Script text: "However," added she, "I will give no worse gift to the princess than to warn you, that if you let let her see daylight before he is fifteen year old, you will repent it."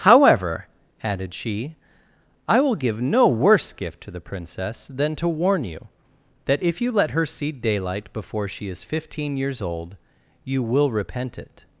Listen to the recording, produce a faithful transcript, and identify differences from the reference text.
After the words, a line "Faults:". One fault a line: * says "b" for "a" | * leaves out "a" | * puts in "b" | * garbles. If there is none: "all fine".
"However," added she, "I will give no worse gift to the princess than to warn you, that if you let her see daylight before she is fifteen years old, you will repent it."
Faults:
* leaves out "let"
* says "she" for "he"
* says "years" for "year"